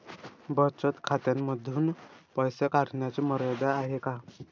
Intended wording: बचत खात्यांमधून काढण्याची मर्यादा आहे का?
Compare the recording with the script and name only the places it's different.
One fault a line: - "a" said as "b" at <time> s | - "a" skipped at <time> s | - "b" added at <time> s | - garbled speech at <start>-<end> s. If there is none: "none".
- "पैसे" added at 2.4 s